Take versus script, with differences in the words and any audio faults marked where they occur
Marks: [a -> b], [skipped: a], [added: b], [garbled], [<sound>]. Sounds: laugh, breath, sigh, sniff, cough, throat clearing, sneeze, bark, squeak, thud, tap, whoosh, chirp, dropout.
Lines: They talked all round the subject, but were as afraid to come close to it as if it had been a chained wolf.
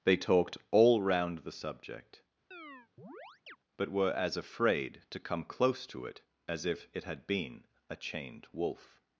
They talked all round the subject, [chirp] but were as afraid to come close to it as if it had been a chained wolf.